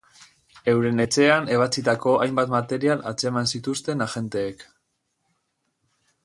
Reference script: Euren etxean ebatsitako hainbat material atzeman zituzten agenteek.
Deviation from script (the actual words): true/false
false